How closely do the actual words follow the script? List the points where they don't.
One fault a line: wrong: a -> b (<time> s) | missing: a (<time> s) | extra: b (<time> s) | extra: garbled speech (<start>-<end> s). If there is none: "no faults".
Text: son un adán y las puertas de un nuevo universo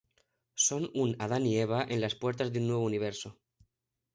extra: eva en (1.6 s)